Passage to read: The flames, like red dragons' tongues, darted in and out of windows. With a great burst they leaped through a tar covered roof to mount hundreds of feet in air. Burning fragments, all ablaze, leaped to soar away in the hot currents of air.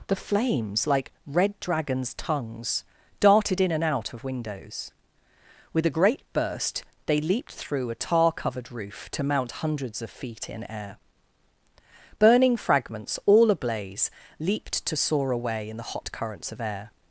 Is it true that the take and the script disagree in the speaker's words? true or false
false